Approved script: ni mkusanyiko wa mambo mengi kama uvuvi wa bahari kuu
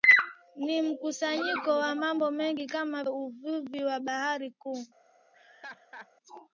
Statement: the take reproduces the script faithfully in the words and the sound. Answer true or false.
false